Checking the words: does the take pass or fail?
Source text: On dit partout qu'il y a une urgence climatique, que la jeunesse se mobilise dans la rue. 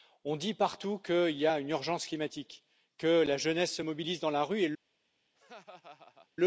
pass